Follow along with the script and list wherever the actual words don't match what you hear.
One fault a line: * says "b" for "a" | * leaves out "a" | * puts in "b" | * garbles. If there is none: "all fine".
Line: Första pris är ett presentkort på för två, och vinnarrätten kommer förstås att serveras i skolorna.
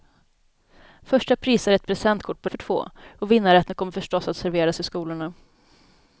all fine